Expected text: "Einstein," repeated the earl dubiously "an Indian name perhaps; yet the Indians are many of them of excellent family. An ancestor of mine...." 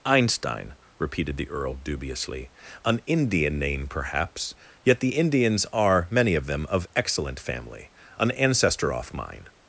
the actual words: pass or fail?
fail